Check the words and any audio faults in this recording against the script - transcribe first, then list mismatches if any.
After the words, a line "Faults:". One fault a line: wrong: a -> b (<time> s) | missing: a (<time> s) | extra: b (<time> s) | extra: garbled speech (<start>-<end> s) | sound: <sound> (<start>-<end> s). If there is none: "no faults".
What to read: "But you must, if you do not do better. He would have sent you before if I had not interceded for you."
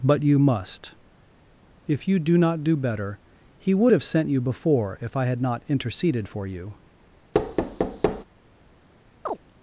"But you must, if you do not do better. He would have sent you before if I had not interceded for you."
Faults:
sound: thud (7.3-8.2 s)
sound: chirp (9.2-9.4 s)